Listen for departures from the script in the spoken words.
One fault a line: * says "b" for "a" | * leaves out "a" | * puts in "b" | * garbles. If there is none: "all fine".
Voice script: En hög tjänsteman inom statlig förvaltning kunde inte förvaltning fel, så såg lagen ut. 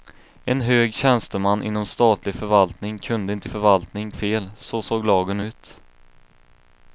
all fine